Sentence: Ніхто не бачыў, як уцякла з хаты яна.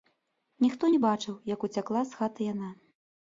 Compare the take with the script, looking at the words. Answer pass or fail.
pass